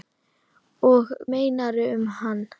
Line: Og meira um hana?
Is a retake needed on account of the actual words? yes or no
no